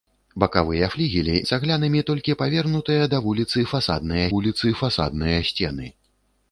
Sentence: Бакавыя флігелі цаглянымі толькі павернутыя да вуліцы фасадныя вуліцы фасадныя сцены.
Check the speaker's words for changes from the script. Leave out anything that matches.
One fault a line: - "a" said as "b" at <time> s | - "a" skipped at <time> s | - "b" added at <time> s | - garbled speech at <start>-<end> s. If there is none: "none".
none